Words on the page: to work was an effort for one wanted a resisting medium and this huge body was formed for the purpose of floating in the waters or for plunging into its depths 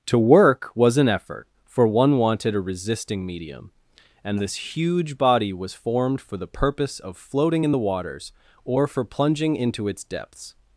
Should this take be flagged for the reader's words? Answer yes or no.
no